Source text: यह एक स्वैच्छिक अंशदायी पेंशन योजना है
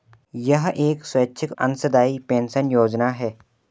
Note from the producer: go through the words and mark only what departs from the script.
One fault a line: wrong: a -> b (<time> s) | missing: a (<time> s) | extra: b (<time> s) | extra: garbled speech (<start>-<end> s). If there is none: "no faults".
no faults